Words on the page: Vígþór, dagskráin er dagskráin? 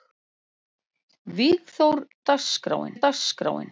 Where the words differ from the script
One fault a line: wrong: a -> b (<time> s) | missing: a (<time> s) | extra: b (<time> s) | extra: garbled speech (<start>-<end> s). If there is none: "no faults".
no faults